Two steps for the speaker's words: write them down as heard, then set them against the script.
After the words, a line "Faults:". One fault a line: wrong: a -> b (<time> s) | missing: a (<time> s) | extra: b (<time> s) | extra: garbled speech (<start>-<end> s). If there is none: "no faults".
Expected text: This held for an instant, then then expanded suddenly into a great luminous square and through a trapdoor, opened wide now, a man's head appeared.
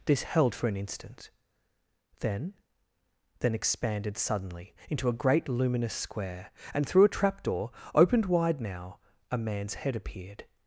This held for an instant, then then expanded suddenly into a great luminous square and through a trapdoor, opened wide now, a man's head appeared.
Faults:
no faults